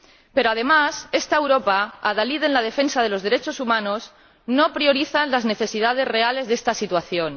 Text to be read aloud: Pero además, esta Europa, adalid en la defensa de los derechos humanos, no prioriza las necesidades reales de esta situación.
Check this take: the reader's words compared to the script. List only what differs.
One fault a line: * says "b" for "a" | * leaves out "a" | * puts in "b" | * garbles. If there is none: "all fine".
all fine